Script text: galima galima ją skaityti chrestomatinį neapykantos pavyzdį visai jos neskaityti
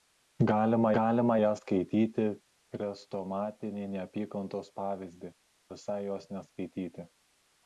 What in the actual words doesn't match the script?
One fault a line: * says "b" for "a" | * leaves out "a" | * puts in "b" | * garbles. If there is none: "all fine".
all fine